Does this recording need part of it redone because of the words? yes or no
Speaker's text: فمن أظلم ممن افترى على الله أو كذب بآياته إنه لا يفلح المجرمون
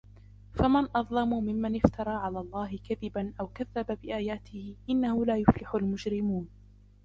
yes